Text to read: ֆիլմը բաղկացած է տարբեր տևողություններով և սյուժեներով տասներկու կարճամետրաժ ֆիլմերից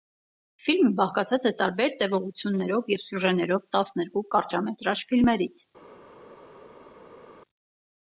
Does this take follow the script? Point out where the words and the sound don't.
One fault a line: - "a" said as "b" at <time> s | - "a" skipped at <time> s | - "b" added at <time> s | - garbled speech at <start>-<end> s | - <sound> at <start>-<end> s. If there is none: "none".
none